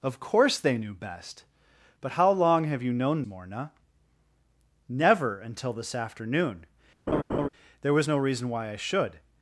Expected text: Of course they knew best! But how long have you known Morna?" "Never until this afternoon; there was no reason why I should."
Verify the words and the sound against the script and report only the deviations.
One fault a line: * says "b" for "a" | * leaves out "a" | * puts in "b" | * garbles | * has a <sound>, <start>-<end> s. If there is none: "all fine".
* has a laugh, 7.1-7.5 s